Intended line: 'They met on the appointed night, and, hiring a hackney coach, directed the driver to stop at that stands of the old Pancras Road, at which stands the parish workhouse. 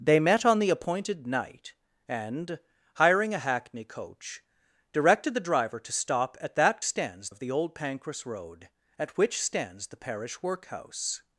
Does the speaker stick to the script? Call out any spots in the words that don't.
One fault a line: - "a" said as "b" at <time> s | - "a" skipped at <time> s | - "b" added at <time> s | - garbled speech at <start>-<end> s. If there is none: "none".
none